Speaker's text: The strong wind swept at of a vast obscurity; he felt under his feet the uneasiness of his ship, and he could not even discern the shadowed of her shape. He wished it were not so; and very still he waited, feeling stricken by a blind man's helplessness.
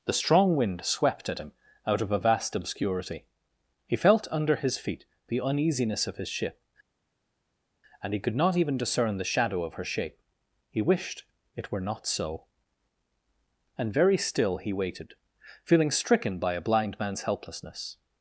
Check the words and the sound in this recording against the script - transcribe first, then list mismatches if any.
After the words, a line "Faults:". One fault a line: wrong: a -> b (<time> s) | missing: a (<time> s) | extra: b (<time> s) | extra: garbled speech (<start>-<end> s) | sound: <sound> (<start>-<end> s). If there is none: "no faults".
The strong wind swept at him out of a vast obscurity; he felt under his feet the uneasiness of his ship, and he could not even discern the shadow of her shape. He wished it were not so; and very still he waited, feeling stricken by a blind man's helplessness.
Faults:
extra: him out (1.4 s)
wrong: shadowed -> shadow (9.2 s)